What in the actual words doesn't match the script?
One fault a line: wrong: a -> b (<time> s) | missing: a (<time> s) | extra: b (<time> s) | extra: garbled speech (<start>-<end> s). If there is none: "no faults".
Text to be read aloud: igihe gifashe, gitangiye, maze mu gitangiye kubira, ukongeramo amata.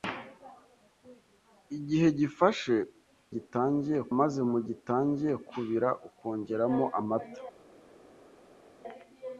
no faults